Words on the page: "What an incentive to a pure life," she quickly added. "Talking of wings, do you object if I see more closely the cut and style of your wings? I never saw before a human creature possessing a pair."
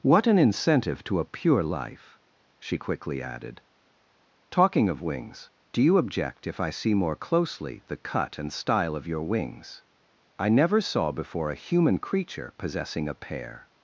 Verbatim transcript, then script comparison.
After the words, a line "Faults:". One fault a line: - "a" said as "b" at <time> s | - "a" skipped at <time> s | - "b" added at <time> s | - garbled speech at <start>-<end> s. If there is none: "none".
"What an incentive to a pure life," she quickly added. "Talking of wings, do you object if I see more closely the cut and style of your wings? I never saw before a human creature possessing a pair."
Faults:
none